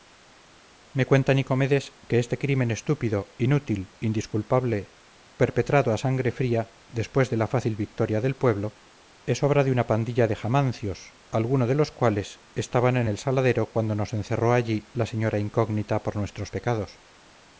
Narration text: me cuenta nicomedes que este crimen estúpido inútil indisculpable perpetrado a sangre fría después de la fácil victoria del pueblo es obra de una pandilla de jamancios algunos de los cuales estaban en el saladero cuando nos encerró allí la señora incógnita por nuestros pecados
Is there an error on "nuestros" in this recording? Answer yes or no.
no